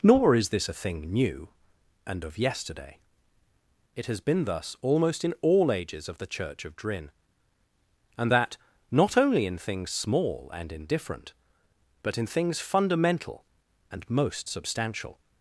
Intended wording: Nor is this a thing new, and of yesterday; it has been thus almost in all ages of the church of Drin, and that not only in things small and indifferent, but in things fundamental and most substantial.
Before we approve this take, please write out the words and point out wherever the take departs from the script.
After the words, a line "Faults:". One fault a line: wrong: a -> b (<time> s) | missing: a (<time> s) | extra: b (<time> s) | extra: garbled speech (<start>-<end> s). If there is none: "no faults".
Nor is this a thing new, and of yesterday; it has been thus almost in all ages of the church of Drin, and that not only in things small and indifferent, but in things fundamental and most substantial.
Faults:
no faults